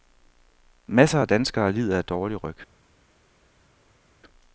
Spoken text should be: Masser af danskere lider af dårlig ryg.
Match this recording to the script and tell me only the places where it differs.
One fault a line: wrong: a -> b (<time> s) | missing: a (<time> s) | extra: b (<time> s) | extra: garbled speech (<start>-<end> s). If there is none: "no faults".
no faults